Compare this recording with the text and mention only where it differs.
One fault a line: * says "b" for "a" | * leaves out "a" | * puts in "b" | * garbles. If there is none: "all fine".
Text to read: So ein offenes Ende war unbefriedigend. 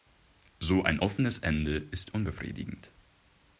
* says "ist" for "war"